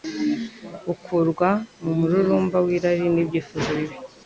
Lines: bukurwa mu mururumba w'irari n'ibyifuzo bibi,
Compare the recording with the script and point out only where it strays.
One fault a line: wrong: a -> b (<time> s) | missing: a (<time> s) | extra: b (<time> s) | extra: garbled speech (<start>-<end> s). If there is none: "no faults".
no faults